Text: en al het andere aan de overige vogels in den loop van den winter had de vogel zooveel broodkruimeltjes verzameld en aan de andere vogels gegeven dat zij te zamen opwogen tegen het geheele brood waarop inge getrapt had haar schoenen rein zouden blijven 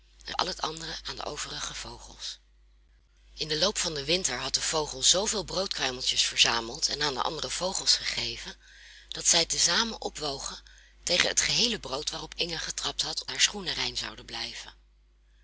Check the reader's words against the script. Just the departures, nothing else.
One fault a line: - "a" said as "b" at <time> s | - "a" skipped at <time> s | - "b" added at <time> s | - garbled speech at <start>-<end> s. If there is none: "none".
none